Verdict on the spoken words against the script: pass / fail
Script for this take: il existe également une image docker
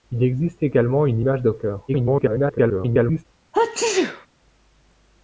fail